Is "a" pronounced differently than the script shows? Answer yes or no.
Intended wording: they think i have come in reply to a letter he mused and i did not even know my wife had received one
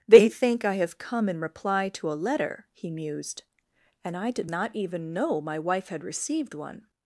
no